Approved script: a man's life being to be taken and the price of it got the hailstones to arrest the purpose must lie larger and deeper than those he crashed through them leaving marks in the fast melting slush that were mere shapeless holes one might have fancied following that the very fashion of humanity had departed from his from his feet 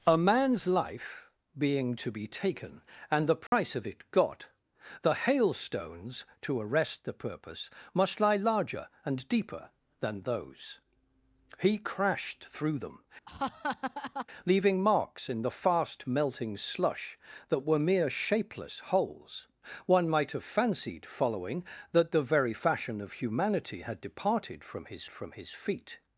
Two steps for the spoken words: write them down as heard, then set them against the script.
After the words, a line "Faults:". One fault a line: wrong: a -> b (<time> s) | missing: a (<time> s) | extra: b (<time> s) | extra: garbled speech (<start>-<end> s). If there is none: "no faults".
a man's life being to be taken and the price of it got the hailstones to arrest the purpose must lie larger and deeper than those he crashed through them leaving marks in the fast melting slush that were mere shapeless holes one might have fancied following that the very fashion of humanity had departed from his from his feet
Faults:
no faults